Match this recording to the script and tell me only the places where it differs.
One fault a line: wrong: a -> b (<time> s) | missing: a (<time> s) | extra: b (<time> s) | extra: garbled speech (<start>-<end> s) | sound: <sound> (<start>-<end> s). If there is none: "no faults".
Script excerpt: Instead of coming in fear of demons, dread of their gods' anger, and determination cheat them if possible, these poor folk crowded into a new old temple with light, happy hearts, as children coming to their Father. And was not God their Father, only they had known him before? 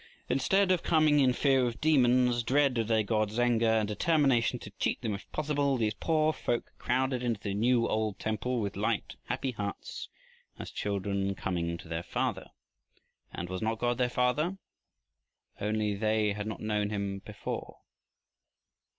extra: to (4.6 s)
wrong: a -> the (7.4 s)
extra: not (16.5 s)